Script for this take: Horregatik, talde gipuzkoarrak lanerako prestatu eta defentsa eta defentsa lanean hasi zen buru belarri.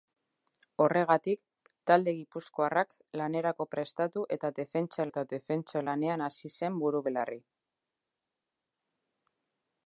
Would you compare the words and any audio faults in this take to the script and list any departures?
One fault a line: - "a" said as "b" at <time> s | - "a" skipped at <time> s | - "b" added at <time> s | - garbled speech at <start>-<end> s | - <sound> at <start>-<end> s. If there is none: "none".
none